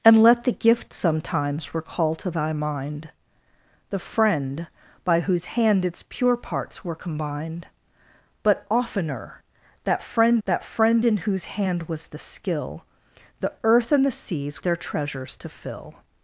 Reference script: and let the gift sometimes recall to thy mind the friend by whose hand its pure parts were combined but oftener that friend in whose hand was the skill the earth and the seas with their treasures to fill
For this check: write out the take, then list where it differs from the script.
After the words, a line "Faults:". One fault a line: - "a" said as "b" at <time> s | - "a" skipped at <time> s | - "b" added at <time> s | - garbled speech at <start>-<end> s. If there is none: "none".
and let the gift sometimes recall to thy mind the friend by whose hand its pure parts were combined but oftener that friend that friend in whose hand was the skill the earth and the seas their treasures to fill
Faults:
- "that friend" added at 10.4 s
- "with" skipped at 14.6 s